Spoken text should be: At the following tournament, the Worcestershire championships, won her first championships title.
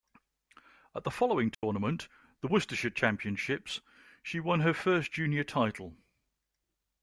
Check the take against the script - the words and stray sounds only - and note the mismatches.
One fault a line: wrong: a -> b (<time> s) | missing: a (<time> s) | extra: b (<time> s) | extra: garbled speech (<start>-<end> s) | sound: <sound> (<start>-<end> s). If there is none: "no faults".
sound: dropout (1.5-1.6 s)
extra: she (4.2 s)
wrong: championships -> junior (5.1 s)